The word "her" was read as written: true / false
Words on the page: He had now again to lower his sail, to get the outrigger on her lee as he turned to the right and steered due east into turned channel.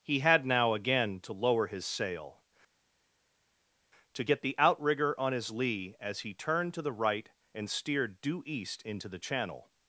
false